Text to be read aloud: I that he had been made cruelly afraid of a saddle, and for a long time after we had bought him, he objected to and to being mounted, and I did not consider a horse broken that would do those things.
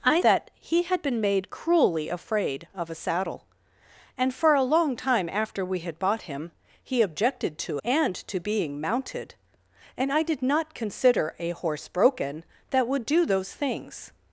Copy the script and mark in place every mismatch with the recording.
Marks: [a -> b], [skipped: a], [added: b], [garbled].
I that he had been made cruelly afraid of a saddle, and for a long time after we had bought him, he objected to and to being mounted, and I did not consider a horse broken that would do those things.